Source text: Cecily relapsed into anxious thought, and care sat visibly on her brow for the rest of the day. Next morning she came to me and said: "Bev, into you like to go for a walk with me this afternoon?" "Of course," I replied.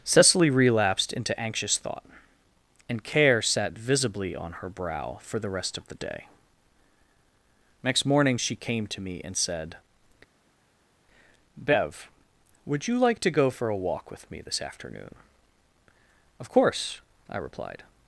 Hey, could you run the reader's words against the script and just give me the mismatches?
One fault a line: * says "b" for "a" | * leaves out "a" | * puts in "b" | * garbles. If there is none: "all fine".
* says "would" for "into"